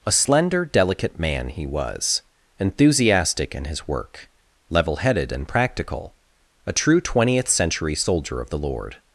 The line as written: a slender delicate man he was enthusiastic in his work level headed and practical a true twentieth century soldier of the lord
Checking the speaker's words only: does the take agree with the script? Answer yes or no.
yes